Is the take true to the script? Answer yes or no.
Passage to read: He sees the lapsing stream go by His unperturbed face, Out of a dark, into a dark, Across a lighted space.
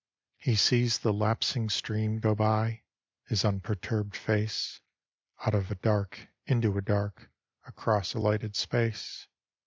yes